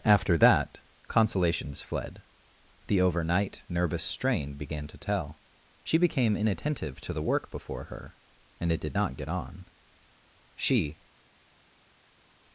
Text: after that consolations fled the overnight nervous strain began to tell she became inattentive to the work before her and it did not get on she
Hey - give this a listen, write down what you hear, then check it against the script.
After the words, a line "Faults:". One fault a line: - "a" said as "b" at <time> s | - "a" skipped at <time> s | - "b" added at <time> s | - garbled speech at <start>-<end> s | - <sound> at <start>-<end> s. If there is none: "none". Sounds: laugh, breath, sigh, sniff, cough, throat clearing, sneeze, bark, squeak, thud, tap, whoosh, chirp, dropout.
after that consolations fled the overnight nervous strain began to tell she became inattentive to the work before her and it did not get on she
Faults:
none